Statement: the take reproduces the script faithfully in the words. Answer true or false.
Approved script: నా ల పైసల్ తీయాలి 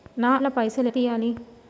true